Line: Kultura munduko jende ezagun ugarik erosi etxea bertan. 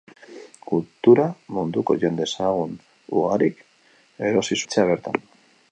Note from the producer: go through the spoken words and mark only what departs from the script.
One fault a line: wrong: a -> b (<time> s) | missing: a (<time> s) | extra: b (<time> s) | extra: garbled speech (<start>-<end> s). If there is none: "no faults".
no faults